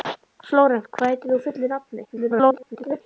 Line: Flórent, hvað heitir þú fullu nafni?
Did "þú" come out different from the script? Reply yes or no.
no